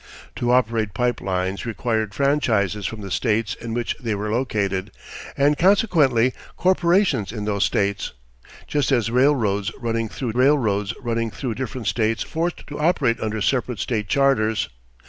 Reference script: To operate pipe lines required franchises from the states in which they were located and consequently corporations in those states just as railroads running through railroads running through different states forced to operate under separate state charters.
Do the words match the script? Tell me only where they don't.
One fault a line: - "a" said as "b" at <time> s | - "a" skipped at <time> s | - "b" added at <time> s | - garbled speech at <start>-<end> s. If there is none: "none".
none